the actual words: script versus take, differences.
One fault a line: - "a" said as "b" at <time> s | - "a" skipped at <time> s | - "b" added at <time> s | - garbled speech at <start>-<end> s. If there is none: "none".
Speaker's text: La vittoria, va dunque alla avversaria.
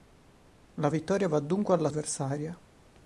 none